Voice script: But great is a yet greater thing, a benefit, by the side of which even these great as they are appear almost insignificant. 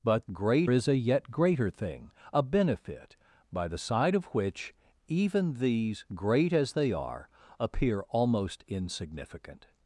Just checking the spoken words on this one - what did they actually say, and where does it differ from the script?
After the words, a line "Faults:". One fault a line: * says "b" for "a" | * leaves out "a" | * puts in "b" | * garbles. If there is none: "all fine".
But great is a yet greater thing, a benefit, by the side of which even these great as they are appear almost insignificant.
Faults:
all fine